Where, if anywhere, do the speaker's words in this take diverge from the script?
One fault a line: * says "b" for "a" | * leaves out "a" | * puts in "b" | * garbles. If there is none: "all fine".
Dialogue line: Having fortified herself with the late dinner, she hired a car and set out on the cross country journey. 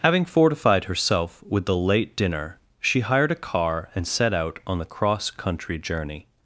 all fine